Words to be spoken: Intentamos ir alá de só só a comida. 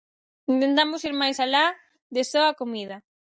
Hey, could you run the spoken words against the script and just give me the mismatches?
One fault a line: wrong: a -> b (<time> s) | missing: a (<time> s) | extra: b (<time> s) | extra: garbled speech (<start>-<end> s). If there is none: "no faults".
extra: máis (1.2 s)
missing: só (2.4 s)